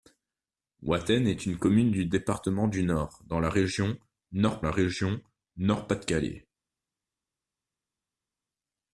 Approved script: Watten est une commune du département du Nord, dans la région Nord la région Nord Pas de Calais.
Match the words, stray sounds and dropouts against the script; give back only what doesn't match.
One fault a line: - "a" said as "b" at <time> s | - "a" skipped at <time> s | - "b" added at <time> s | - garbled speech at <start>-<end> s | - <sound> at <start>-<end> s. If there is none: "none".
none